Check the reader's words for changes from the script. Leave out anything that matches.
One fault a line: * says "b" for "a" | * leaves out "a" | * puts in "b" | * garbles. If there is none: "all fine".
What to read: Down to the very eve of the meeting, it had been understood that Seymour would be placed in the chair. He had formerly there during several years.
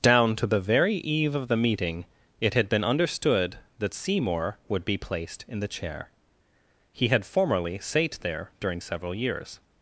* puts in "sate"